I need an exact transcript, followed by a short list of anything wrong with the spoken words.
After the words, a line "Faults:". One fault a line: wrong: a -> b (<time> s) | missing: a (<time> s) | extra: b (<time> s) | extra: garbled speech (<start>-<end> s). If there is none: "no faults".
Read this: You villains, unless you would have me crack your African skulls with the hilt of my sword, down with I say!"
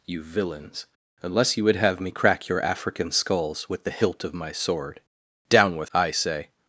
You villains, unless you would have me crack your African skulls with the hilt of my sword, down with I say!"
Faults:
no faults